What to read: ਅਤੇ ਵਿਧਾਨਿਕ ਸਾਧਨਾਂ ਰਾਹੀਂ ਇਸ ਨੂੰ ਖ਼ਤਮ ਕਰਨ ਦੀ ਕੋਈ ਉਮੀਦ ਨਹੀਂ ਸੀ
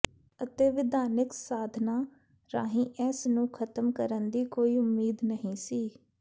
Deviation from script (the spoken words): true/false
false